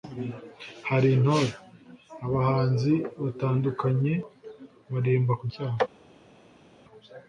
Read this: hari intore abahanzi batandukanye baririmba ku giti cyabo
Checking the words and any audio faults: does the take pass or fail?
fail